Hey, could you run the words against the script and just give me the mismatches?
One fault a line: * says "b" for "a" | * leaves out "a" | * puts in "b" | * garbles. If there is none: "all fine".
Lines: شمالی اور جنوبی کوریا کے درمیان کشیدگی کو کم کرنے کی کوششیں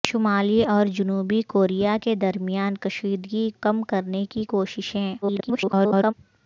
* leaves out "کو"
* garbles